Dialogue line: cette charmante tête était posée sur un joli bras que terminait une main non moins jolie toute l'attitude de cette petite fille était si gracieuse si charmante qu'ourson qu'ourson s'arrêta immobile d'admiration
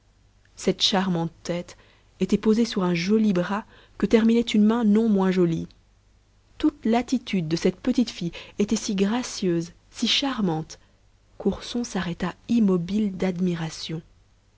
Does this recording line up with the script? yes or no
no